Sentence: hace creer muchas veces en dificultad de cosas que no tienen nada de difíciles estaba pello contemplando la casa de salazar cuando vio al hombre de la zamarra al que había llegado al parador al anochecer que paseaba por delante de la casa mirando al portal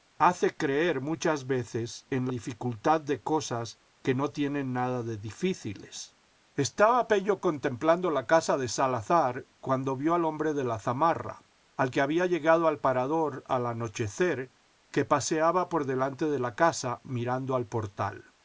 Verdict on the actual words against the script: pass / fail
pass